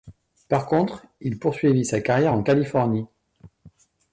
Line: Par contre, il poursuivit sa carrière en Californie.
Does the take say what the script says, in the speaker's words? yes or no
yes